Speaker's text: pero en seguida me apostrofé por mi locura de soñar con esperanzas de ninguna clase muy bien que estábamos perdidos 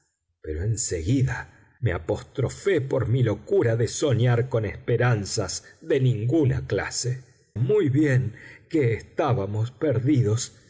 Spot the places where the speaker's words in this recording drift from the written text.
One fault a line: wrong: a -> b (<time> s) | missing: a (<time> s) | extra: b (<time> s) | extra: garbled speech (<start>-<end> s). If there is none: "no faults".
no faults